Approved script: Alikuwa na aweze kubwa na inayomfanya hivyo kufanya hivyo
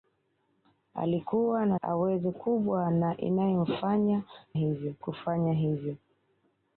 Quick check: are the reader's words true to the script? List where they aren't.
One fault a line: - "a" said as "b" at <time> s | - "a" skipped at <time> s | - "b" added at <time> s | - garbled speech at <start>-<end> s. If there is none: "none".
none